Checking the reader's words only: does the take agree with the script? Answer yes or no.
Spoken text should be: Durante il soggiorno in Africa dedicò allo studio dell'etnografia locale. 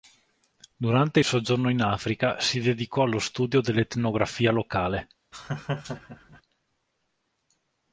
no